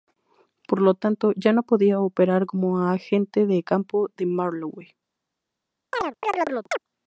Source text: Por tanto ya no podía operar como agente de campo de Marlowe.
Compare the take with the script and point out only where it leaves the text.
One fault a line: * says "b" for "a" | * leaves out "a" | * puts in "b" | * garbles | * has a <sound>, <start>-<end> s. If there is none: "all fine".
* puts in "lo"
* has a chirp, 5.9-6.8 s